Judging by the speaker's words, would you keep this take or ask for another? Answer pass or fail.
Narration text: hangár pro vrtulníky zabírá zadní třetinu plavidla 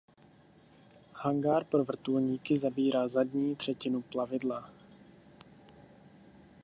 pass